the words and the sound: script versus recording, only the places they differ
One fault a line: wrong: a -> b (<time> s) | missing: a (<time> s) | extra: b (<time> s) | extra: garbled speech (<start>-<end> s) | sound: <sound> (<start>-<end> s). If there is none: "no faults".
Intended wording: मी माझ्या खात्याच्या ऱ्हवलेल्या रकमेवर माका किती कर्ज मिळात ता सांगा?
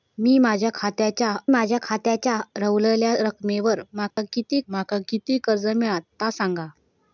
extra: माझ्या खात्याच्या (1.5 s)
sound: dropout (4.1-4.2 s)
extra: माका किती (4.7 s)